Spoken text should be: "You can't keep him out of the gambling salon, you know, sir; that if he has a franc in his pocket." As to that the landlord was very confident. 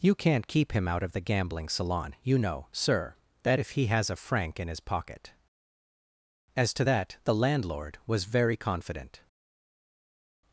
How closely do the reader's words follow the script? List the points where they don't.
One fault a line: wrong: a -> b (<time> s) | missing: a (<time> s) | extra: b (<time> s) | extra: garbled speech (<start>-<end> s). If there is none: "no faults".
no faults